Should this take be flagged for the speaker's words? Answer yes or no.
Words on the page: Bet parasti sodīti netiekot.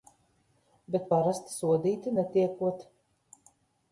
no